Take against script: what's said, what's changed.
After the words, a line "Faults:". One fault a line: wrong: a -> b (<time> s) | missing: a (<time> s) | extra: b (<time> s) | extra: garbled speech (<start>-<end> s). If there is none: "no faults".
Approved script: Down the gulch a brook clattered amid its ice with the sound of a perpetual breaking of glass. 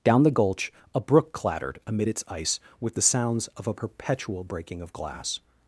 Down the gulch a brook clattered amid its ice with the sounds of a perpetual breaking of glass.
Faults:
wrong: sound -> sounds (3.0 s)